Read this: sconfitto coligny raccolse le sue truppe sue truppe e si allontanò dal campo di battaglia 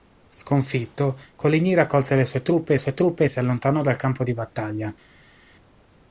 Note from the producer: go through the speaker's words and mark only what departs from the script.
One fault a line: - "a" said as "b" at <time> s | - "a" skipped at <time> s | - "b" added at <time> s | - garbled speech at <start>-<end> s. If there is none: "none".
none